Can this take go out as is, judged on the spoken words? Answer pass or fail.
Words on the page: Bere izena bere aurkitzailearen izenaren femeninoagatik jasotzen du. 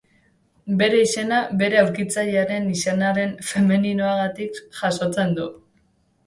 pass